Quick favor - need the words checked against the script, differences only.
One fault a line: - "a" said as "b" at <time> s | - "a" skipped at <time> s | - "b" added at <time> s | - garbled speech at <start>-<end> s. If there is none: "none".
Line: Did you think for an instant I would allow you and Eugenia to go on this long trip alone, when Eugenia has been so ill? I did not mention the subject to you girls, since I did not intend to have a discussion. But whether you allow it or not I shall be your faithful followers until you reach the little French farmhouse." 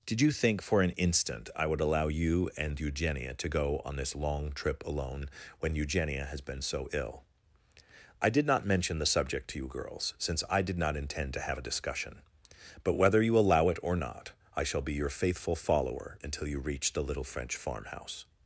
- "followers" said as "follower" at 15.6 s